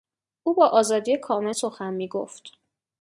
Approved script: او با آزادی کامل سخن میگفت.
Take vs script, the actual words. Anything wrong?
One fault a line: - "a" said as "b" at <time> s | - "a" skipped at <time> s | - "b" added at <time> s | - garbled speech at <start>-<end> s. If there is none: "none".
none